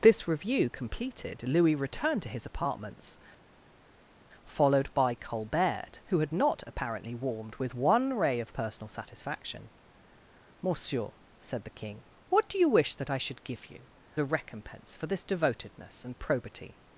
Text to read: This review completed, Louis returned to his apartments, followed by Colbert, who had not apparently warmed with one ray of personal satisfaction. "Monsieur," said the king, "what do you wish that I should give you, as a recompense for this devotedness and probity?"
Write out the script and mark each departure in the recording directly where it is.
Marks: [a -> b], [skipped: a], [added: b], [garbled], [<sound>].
This review completed, Louis returned to his apartments, followed by Colbert, who had not apparently warmed with one ray of personal satisfaction. "Monsieur," said the king, "what do you wish that I should give you, [skipped: as] a recompense for this devotedness and probity?"